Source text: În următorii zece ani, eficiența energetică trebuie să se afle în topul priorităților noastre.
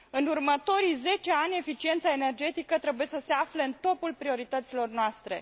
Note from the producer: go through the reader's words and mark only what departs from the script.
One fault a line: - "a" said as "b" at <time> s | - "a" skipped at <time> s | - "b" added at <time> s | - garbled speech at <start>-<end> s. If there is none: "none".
none